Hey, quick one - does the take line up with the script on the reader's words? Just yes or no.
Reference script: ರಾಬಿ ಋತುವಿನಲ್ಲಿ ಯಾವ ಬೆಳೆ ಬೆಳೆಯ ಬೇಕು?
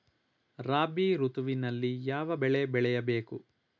yes